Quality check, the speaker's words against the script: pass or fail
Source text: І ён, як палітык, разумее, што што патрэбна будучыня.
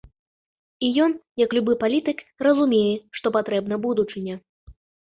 fail